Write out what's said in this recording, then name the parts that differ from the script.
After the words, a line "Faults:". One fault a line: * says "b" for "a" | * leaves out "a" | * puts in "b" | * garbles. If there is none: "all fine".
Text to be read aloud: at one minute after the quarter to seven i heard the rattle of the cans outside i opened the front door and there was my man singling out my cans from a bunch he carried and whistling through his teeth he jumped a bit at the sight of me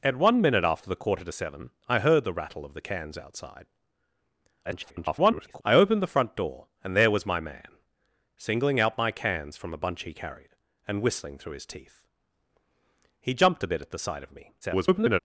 at one minute after the quarter to seven i heard the rattle of the cans outside [garbled] i opened the front door and there was my man singling out my cans from a bunch he carried and whistling through his teeth he jumped a bit at the sight of me [garbled]
Faults:
* garbles
* garbles